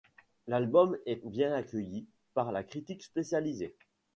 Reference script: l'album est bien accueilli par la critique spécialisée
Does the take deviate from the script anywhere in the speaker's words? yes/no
no